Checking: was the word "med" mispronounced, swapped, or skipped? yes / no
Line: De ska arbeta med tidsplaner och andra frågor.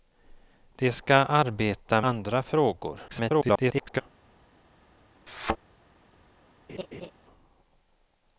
yes